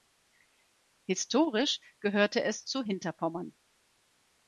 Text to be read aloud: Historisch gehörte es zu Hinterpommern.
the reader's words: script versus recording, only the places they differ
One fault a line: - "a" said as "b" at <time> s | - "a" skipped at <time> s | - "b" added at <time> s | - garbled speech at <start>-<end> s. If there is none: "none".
none